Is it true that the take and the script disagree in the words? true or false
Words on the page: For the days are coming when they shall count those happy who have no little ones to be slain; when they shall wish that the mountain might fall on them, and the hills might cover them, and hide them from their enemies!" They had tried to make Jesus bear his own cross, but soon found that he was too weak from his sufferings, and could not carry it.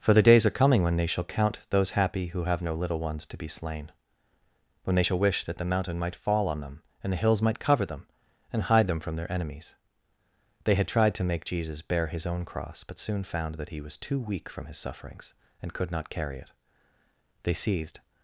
true